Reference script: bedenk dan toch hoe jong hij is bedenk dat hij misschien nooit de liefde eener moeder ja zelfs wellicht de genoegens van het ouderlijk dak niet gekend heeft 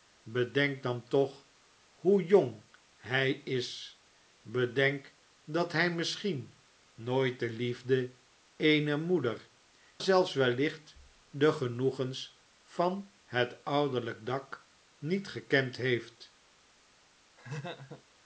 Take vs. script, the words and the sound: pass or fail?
fail